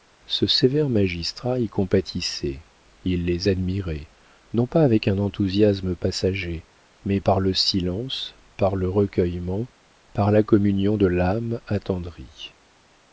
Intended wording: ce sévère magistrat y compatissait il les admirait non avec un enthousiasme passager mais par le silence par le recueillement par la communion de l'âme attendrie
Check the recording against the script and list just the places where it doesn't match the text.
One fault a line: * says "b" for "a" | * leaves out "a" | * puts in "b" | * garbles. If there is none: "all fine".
* puts in "pas"